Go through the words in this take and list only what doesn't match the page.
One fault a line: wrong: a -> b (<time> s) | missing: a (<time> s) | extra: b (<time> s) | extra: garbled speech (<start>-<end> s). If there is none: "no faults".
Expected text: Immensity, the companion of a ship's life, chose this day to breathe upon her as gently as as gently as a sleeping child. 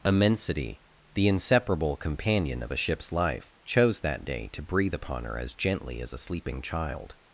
extra: inseparable (1.3 s)
wrong: this -> that (4.0 s)
missing: as gently as (6.1 s)